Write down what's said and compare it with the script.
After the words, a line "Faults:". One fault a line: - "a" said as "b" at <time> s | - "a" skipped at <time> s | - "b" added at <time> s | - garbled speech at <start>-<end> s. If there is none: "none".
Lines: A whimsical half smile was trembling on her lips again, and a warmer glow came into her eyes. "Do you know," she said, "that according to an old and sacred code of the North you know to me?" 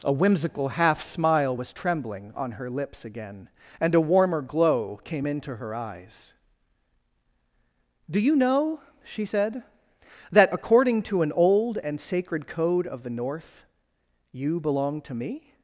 A whimsical half smile was trembling on her lips again, and a warmer glow came into her eyes. "Do you know," she said, "that according to an old and sacred code of the North you belong to me?"
Faults:
- "know" said as "belong" at 14.6 s